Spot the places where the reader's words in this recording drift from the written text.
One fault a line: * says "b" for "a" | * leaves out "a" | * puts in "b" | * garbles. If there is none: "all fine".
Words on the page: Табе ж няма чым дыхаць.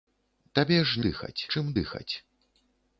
* says "дыхаць" for "няма"